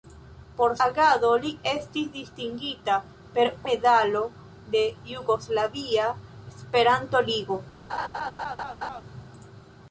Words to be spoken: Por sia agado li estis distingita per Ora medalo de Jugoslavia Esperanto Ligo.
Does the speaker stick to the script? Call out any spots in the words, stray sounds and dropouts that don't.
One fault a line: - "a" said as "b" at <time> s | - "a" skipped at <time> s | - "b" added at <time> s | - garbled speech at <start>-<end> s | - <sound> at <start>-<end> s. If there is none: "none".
- "sia" skipped at 0.7 s
- "Ora" skipped at 3.5 s
- laugh at 7.9-9.0 s